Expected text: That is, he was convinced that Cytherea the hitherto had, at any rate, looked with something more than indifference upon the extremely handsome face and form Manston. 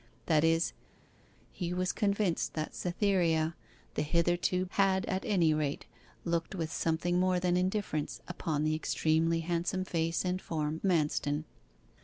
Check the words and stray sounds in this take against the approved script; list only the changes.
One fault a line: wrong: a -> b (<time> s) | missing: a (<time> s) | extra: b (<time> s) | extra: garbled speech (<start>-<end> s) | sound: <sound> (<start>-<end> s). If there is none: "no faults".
no faults